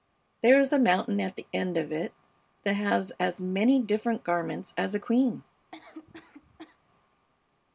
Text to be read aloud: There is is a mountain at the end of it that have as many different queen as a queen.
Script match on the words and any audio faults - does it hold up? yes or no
no